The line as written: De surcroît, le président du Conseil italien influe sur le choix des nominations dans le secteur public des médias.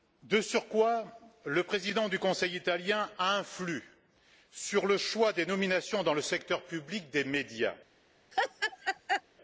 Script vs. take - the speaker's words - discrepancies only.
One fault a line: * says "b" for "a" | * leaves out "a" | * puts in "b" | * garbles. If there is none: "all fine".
all fine